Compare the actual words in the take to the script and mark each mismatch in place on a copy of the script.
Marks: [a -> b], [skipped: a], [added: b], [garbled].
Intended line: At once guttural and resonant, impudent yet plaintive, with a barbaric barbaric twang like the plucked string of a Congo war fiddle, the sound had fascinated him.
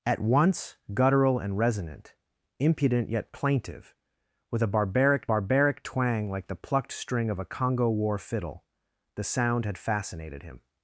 At once guttural and resonant, impudent yet plaintive, with a barbaric barbaric twang like the plucked string of a Congo war fiddle, the sound had fascinated him.